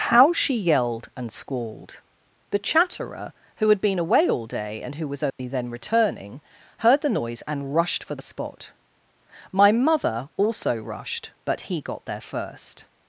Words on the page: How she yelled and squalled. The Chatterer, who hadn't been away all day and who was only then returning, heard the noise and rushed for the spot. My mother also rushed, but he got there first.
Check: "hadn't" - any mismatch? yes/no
yes